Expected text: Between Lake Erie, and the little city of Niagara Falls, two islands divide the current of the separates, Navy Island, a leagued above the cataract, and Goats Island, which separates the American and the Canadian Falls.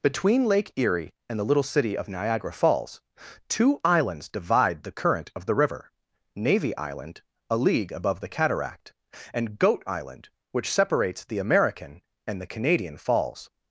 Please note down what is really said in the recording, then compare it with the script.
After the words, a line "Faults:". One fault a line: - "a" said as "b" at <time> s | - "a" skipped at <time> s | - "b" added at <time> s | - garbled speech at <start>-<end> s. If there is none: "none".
Between Lake Erie, and the little city of Niagara Falls, two islands divide the current of the river, Navy Island, a league above the cataract, and Goat Island, which separates the American and the Canadian Falls.
Faults:
- "separates" said as "river" at 5.5 s
- "leagued" said as "league" at 7.6 s
- "Goats" said as "Goat" at 9.6 s